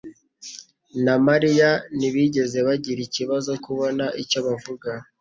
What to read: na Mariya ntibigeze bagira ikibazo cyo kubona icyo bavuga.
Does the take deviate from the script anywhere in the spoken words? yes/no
yes